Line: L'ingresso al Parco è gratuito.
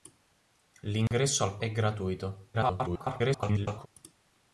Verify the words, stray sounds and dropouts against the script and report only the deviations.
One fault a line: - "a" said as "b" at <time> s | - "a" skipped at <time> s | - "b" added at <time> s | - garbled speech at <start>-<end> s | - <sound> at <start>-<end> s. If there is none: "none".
- dropout at 1.1-1.1 s
- "Parco" skipped at 1.6 s
- garbled speech at 2.5-3.9 s